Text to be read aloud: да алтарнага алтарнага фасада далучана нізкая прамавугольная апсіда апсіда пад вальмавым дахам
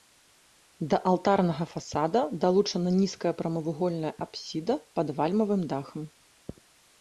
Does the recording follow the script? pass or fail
fail